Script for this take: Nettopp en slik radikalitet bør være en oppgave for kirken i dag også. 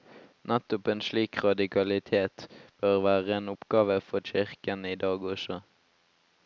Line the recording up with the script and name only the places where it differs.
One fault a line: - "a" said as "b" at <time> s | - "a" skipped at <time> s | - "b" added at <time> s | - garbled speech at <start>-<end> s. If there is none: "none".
none